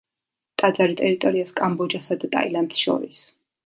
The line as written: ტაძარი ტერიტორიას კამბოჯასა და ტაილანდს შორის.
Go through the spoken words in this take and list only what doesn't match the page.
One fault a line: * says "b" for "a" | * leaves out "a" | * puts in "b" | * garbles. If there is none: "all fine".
all fine